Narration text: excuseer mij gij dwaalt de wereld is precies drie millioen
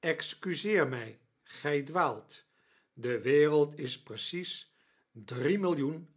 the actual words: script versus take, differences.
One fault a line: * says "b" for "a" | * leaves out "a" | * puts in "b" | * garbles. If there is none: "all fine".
all fine